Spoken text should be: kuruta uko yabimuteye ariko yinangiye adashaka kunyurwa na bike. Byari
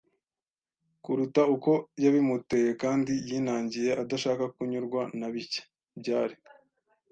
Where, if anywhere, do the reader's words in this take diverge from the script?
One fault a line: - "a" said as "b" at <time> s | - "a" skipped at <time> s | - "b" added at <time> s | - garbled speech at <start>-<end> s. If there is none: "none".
- "ariko" said as "kandi" at 2.8 s